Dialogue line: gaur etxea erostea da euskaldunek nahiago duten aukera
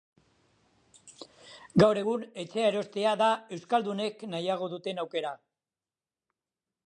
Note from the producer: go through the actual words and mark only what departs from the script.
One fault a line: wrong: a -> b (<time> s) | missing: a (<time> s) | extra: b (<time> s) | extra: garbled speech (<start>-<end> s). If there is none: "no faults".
extra: egun (2.0 s)